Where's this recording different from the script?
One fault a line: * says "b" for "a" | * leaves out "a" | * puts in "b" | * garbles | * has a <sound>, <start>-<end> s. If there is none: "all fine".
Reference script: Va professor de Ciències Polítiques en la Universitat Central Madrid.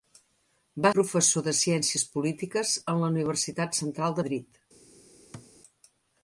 * has a thud, 5.3-5.5 s